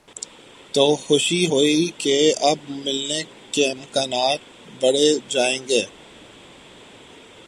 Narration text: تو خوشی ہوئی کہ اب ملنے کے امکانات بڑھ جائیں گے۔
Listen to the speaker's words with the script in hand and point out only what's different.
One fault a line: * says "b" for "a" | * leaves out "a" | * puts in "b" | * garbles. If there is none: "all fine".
all fine